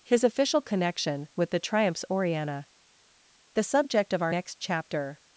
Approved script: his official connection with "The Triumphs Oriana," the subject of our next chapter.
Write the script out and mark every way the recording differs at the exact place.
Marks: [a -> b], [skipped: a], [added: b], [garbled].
his official connection with "The Triumphs Oriana," the subject of our next chapter.